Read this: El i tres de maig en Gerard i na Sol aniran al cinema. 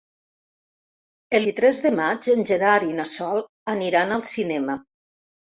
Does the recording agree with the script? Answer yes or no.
yes